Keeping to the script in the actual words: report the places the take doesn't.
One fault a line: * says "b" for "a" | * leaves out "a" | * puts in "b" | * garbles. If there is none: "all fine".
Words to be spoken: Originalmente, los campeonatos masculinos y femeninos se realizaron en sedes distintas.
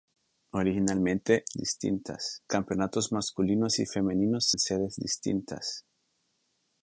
* says "distintas" for "los"
* leaves out "se realizaron"